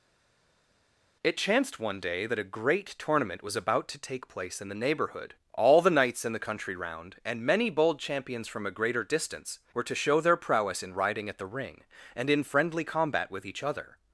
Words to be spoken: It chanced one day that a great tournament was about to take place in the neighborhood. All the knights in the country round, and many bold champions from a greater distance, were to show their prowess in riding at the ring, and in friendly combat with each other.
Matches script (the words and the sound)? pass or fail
pass